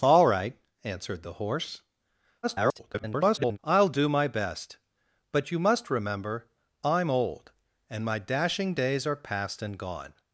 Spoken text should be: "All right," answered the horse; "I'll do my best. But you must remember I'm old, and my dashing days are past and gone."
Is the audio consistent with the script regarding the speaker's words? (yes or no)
no